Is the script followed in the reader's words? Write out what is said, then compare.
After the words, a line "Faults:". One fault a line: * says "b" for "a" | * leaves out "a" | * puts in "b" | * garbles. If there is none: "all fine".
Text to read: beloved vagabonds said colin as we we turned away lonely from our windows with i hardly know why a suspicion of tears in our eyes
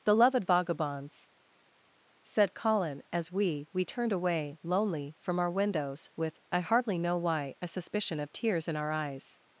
beloved vagabonds said colin as we we turned away lonely from our windows with i hardly know why a suspicion of tears in our eyes
Faults:
all fine